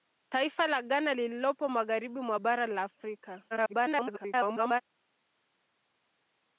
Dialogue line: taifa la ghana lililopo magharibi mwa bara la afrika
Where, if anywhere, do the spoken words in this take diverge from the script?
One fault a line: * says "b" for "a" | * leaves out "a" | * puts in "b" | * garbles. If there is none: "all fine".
* garbles